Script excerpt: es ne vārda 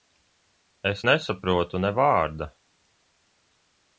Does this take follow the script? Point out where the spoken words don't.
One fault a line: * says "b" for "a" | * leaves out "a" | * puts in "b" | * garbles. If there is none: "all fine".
* puts in "nesaprotu"